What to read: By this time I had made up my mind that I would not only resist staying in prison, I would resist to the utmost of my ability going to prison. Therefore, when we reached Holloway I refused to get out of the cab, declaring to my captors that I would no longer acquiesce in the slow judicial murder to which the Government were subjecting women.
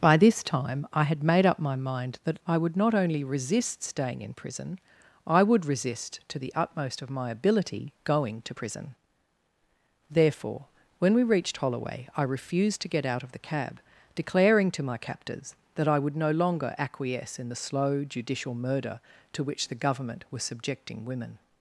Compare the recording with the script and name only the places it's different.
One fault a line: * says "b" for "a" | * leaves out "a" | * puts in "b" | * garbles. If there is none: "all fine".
* says "was" for "were"